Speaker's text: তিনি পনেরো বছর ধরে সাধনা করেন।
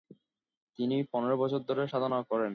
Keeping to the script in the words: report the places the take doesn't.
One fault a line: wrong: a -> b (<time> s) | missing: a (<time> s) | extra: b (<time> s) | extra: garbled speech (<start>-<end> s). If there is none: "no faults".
no faults